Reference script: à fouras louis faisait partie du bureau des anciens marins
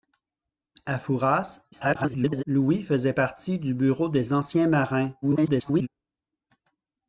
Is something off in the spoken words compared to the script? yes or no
yes